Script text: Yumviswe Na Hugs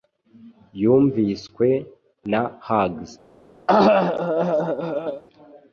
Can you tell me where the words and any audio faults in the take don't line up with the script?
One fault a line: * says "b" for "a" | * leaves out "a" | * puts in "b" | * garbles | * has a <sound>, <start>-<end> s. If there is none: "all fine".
* has a cough, 3.7-5.2 s